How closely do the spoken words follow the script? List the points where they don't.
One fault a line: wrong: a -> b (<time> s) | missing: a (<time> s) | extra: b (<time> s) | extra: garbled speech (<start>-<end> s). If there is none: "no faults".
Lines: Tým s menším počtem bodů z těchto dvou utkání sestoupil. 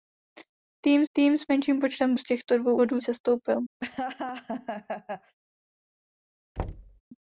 extra: tým (1.1 s)
missing: bodů (2.1 s)
wrong: utkání -> bodů (2.7 s)